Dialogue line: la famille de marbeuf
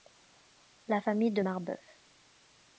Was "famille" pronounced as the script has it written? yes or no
yes